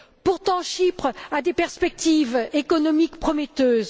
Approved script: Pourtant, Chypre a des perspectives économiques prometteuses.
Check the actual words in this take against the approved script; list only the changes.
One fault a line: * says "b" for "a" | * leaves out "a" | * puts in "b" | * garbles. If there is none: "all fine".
all fine